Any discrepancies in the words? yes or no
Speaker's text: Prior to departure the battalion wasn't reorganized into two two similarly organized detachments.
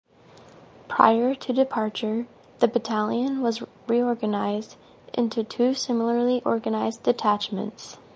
yes